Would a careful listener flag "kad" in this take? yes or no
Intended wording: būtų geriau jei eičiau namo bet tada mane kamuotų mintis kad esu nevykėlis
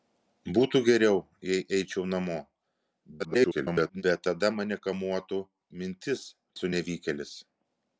yes